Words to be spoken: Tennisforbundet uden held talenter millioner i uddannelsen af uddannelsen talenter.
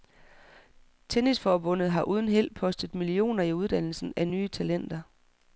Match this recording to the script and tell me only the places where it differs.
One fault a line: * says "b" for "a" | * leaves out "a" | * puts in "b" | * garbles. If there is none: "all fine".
* puts in "har"
* says "postet" for "talenter"
* says "nye" for "uddannelsen"